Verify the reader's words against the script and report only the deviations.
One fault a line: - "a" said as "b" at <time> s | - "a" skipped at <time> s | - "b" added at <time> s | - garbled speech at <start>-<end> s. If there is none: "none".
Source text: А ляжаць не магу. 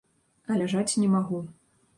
none